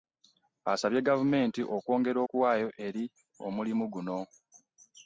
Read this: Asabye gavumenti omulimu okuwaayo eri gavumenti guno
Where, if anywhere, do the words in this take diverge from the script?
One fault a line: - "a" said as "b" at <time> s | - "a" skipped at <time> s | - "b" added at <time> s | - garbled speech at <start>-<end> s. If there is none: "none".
- "omulimu" said as "okwongera" at 1.8 s
- "gavumenti" said as "omulimu" at 3.5 s